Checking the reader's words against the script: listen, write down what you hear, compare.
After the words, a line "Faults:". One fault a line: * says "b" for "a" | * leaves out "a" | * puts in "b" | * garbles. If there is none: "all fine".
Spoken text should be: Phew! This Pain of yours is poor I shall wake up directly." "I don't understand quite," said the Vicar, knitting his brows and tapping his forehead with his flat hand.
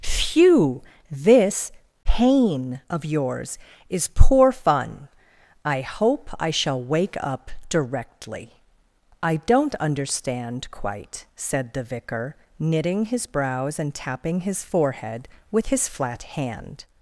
Phew! This Pain of yours is poor fun. I hope I shall wake up directly." "I don't understand quite," said the Vicar, knitting his brows and tapping his forehead with his flat hand.
Faults:
* puts in "fun I hope"